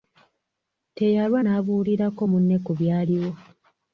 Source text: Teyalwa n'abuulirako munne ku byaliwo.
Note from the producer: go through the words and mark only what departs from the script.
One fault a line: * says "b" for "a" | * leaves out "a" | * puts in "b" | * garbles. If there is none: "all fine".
all fine